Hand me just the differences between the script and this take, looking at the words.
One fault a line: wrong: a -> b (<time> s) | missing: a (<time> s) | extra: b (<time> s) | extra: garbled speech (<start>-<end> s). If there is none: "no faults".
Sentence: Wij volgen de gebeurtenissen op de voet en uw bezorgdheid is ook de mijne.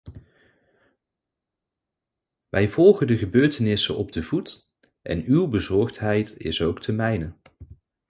no faults